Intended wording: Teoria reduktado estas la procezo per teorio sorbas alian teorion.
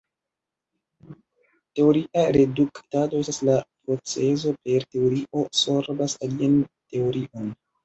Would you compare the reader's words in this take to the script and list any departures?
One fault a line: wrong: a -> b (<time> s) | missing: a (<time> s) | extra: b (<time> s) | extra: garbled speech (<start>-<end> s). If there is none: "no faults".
no faults